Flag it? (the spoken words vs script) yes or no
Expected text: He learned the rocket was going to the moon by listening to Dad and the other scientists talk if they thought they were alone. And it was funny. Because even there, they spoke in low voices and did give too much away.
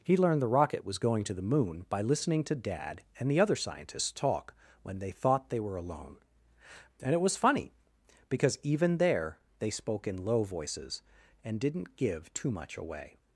yes